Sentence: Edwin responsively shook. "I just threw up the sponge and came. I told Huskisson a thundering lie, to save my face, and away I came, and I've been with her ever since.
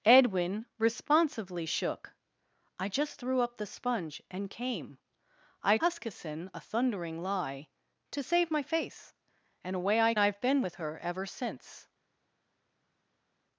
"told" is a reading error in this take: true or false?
true